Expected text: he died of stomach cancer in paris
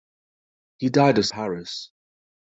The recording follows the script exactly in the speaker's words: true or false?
false